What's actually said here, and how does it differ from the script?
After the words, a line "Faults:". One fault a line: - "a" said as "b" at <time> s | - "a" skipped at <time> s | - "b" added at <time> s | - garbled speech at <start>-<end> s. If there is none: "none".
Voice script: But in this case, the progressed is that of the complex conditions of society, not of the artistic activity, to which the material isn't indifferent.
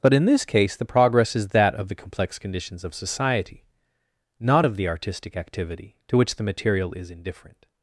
But in this case, the progress is that of the complex conditions of society, not of the artistic activity, to which the material is indifferent.
Faults:
- "progressed" said as "progress" at 0.8 s
- "isn't" said as "is" at 6.9 s